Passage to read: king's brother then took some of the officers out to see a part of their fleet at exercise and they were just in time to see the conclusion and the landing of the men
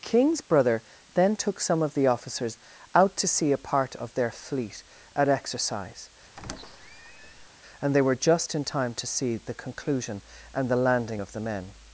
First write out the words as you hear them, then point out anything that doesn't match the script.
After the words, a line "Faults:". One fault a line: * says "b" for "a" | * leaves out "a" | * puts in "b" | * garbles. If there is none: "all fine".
king's brother then took some of the officers out to see a part of their fleet at exercise and they were just in time to see the conclusion and the landing of the men
Faults:
all fine